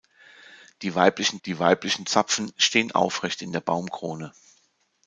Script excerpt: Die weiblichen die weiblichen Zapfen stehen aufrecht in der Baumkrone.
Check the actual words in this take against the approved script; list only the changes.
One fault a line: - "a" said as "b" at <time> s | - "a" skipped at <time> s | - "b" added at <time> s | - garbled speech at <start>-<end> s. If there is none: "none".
none